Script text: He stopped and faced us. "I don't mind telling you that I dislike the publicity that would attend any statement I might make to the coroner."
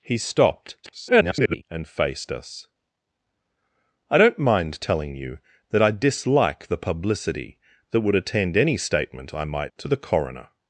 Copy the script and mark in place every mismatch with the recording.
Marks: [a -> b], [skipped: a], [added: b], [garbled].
He stopped [garbled] and faced us. "I don't mind telling you that I dislike the publicity that would attend any statement I might [skipped: make] to the coroner."